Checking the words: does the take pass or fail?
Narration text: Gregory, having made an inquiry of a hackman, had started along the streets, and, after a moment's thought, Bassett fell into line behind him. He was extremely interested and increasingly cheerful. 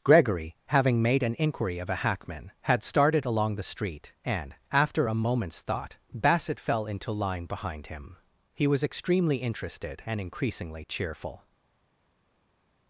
fail